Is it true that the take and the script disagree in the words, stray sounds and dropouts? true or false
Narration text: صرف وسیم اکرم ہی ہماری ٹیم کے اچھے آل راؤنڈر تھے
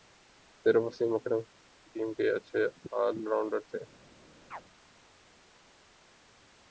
true